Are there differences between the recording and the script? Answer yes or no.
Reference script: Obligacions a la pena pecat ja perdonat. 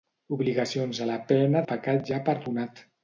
no